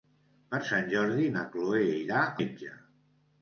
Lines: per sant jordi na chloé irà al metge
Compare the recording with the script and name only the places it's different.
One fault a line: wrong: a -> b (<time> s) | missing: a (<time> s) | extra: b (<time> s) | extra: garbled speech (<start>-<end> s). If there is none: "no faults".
missing: al (2.3 s)